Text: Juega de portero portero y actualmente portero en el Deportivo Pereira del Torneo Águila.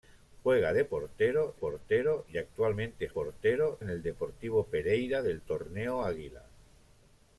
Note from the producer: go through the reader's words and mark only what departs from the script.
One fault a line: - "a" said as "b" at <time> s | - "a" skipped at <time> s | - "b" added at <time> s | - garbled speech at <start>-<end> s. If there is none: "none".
none